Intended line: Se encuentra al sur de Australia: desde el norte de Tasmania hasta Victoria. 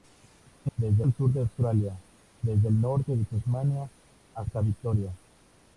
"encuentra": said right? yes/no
no